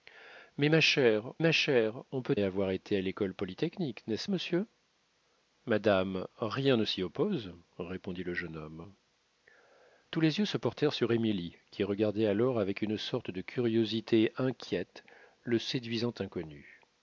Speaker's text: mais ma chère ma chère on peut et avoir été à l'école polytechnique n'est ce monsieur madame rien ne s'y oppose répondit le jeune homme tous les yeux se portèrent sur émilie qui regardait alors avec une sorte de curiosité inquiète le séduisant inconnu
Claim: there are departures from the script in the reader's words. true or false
false